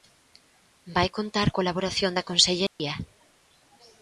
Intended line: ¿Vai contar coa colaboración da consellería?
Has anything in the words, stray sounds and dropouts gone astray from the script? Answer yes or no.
yes